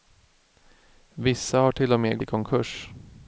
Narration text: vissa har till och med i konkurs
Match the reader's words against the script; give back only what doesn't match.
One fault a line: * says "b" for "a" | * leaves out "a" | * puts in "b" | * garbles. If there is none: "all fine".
all fine